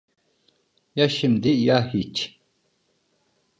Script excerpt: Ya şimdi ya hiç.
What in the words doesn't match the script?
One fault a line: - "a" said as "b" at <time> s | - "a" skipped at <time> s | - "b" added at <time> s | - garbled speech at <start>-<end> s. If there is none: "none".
none